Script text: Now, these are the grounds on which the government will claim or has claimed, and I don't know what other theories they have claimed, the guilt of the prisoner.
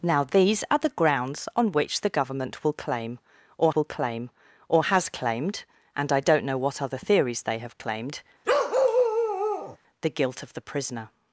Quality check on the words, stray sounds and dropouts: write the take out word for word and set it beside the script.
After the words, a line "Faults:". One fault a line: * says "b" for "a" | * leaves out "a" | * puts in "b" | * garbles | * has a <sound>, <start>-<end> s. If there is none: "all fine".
Now, these are the grounds on which the government will claim or will claim or has claimed, and I don't know what other theories they have claimed, the guilt of the prisoner.
Faults:
* puts in "will claim or"
* has a bark, 8.4-9.8 s